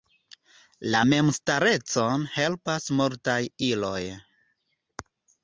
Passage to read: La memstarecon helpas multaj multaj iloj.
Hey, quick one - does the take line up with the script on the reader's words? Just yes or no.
no